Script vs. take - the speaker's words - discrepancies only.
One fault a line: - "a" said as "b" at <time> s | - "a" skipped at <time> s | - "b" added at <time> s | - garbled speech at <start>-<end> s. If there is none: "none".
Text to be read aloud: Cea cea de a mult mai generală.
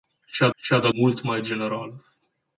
none